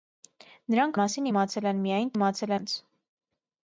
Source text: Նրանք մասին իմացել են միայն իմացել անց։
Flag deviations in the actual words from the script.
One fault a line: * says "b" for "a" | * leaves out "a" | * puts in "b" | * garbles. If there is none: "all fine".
all fine